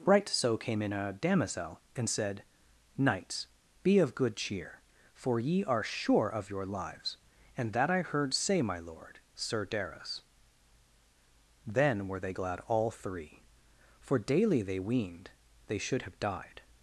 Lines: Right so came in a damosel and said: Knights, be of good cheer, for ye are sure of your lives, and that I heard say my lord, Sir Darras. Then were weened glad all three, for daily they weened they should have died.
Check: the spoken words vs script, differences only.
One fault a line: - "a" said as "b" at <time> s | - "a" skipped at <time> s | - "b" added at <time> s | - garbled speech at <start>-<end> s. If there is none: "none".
- "weened" said as "they" at 12.2 s